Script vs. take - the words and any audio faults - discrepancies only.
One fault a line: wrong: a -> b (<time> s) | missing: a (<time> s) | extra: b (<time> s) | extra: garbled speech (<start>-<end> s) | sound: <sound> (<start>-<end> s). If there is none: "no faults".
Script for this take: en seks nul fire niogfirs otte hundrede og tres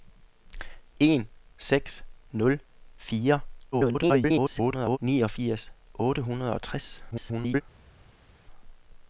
extra: garbled speech (3.7-5.0 s)
extra: garbled speech (7.1-7.6 s)